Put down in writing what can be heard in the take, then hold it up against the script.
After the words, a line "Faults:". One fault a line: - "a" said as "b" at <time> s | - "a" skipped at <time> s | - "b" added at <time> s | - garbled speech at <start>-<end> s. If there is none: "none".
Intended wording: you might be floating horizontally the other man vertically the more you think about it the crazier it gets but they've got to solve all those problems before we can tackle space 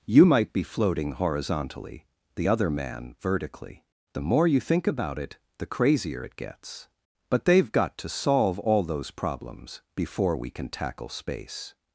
you might be floating horizontally the other man vertically the more you think about it the crazier it gets but they've got to solve all those problems before we can tackle space
Faults:
none